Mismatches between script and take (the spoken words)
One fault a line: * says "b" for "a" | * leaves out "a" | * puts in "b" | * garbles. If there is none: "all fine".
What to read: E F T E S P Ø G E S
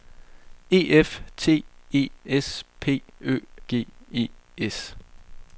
all fine